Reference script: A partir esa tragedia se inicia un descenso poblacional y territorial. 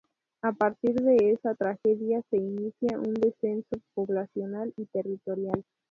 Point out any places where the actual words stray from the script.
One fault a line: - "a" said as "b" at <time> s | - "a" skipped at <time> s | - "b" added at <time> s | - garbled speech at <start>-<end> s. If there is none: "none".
- "de" added at 0.9 s